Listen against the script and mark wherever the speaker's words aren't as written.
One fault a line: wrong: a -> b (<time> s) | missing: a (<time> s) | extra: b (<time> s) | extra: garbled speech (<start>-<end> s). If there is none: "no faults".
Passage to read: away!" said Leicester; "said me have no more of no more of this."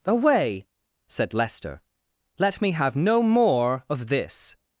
wrong: said -> let (2.4 s)
missing: no more of (4.1 s)